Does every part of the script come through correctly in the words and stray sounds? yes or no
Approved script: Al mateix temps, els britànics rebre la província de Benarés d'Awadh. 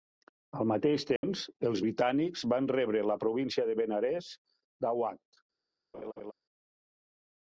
no